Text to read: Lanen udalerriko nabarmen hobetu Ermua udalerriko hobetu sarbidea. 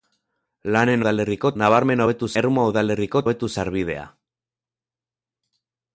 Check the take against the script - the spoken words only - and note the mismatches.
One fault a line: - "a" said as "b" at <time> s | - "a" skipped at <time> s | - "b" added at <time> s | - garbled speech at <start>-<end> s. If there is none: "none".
none